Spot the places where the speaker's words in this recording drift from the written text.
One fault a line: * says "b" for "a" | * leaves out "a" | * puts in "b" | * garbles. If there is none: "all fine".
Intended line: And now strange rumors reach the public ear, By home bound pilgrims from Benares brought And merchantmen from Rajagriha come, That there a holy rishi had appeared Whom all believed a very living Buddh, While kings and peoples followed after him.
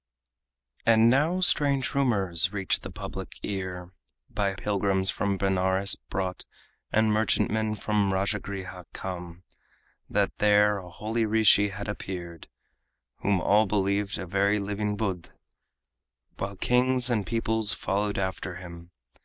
* leaves out "home bound"